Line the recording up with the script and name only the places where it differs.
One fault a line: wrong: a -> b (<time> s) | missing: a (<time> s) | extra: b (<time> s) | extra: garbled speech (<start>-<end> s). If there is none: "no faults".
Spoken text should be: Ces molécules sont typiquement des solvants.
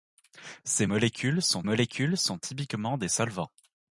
extra: molécules sont (1.6 s)